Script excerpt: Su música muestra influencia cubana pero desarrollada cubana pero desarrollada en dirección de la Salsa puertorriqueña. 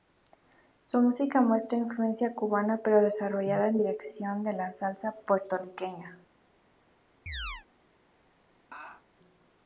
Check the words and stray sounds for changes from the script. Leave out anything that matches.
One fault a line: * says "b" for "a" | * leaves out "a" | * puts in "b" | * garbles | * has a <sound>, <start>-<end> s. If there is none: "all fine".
* leaves out "cubana pero desarrollada"
* has a chirp, 7.3-7.7 s
* has a laugh, 8.7-9.0 s